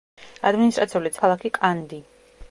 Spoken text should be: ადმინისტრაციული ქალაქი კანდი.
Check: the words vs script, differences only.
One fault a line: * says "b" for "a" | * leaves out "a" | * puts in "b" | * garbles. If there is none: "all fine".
all fine